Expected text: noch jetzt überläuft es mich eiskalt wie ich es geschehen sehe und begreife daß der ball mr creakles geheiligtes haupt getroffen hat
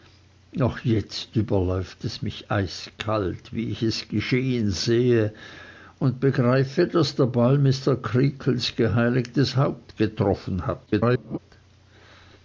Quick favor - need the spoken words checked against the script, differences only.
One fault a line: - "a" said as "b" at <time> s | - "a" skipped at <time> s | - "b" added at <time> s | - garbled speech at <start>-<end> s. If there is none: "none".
- garbled speech at 10.9-11.4 s